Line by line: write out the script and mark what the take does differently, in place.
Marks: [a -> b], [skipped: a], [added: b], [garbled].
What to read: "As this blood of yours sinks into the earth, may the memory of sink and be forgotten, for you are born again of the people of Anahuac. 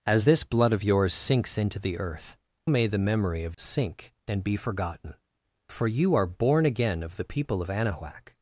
"As this blood of yours sinks into the earth, may the memory of sink and be forgotten, for you are born again of the people of Anahuac.